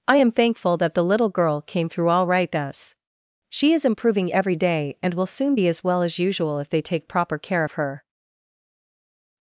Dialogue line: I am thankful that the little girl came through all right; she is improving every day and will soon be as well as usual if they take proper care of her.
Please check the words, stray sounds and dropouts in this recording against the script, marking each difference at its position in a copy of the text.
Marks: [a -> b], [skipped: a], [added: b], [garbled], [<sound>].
I am thankful that the little girl came through all right; [added: thus] she is improving every day and will soon be as well as usual if they take proper care of her.